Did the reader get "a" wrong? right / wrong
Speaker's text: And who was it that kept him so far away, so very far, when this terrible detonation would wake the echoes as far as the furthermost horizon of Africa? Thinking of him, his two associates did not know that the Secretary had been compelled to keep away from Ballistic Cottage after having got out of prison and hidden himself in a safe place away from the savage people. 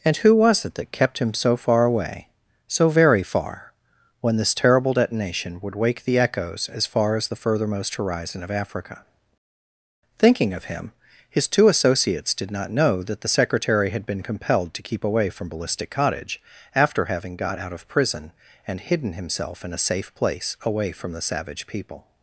right